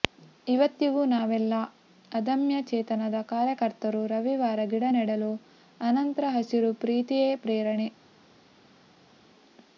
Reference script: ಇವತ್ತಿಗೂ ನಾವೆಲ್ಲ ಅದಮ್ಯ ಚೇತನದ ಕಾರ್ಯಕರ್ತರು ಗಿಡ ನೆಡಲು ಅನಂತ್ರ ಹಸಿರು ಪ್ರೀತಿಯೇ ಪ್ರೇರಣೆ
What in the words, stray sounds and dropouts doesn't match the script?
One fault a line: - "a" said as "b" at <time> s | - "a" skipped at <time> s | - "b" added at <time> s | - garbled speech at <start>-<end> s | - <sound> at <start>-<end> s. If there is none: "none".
- "ರವಿವಾರ" added at 4.1 s